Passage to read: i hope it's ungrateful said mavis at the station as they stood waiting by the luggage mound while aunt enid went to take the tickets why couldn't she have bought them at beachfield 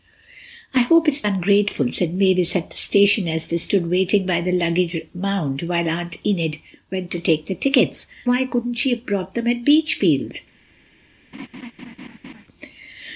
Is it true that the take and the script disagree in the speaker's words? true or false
false